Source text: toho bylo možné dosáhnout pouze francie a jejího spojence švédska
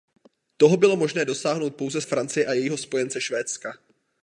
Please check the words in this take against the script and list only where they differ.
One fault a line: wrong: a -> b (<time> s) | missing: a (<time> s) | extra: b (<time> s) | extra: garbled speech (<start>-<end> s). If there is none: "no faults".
no faults